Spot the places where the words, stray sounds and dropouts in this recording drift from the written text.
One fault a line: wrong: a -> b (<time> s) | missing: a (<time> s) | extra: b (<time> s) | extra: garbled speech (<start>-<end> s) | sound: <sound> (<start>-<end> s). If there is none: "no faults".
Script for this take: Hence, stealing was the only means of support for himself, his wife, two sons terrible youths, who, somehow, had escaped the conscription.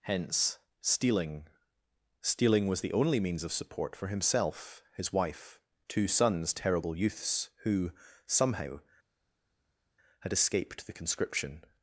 extra: stealing (2.2 s)